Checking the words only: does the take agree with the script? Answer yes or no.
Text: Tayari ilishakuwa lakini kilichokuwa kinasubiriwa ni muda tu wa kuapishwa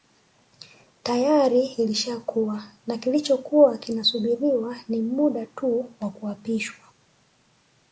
no